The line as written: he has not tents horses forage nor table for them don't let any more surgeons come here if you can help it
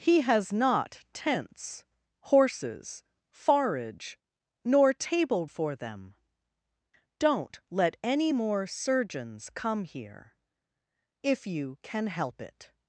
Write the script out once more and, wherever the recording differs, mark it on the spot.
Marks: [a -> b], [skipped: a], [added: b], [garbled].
he has not tents horses forage nor table for them don't let any more surgeons come here if you can help it